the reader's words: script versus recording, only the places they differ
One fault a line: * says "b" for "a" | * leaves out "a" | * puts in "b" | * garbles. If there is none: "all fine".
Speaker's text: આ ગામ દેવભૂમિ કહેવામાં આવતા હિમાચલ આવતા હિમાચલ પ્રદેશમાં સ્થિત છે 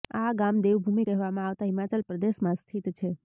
* leaves out "આવતા હિમાચલ"